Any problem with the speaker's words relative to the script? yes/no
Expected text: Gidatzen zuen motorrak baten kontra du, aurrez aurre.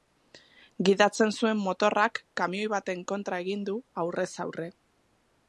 yes